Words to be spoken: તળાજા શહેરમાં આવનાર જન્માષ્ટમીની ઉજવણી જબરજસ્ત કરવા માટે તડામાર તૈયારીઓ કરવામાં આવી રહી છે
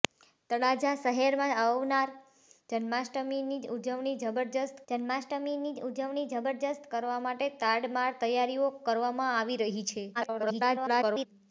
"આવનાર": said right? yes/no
yes